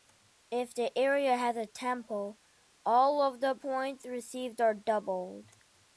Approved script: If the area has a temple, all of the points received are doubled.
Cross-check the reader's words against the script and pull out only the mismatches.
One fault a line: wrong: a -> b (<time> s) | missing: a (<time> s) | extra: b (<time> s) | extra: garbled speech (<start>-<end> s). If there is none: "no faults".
no faults